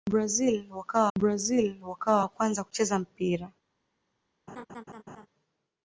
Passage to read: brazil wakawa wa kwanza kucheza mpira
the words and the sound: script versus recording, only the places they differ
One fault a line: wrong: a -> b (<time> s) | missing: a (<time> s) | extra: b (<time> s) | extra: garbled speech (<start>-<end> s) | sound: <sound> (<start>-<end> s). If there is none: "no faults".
extra: brazil wakawa (1.2 s)
sound: laugh (4.5-5.3 s)